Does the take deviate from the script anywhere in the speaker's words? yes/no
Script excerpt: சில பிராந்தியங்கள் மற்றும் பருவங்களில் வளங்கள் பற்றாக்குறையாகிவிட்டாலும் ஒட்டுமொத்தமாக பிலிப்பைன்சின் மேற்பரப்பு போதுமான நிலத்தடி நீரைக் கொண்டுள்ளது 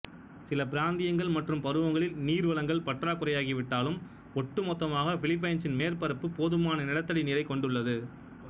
yes